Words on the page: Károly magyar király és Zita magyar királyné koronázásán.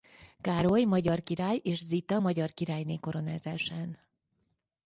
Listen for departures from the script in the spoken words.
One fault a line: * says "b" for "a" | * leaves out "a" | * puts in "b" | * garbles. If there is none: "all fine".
all fine